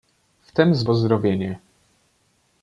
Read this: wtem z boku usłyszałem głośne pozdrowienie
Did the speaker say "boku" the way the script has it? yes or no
no